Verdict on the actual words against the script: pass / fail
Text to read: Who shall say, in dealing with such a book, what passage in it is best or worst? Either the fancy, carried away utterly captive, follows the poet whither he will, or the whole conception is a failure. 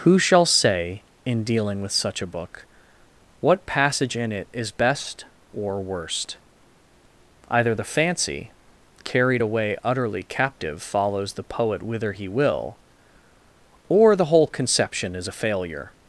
pass